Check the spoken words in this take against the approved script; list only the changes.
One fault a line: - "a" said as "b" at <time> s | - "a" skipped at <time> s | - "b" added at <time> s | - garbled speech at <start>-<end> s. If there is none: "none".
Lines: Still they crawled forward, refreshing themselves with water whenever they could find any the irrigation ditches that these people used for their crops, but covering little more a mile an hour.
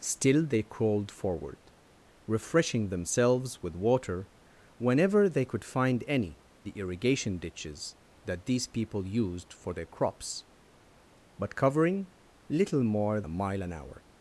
none